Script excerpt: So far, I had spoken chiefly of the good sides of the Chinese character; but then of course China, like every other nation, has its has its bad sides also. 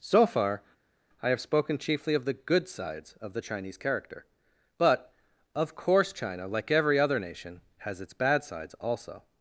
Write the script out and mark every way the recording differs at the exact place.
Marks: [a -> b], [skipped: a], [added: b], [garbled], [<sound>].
So far, I [had -> have] spoken chiefly of the good sides of the Chinese character; but [skipped: then] of course China, like every other nation, has its [skipped: has its] bad sides also.